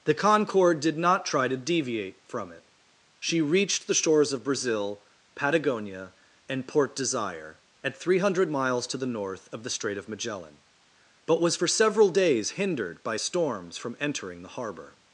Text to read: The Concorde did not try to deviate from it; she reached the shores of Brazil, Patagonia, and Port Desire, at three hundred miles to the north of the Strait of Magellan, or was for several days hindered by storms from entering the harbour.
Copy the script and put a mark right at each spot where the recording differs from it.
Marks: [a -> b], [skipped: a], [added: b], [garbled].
The Concorde did not try to deviate from it; she reached the shores of Brazil, Patagonia, and Port Desire, at three hundred miles to the north of the Strait of Magellan, [or -> but] was for several days hindered by storms from entering the harbour.